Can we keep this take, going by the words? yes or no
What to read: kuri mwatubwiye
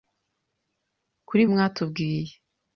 yes